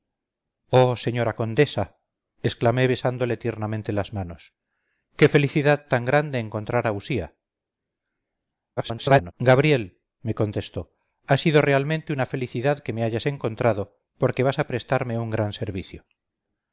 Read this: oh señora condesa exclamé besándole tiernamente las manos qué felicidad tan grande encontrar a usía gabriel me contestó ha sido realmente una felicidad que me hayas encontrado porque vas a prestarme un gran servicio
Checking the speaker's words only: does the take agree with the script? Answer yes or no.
no